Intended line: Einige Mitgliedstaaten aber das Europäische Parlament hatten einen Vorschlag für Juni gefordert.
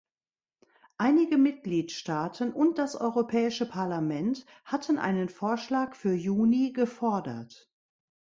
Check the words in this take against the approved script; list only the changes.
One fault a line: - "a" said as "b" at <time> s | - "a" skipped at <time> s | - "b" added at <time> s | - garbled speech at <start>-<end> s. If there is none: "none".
- "aber" said as "und" at 2.5 s